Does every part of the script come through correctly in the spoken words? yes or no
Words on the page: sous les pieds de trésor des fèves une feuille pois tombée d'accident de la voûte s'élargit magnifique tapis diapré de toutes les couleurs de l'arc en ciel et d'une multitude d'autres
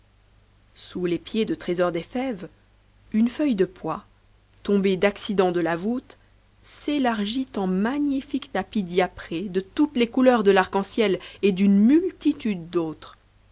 no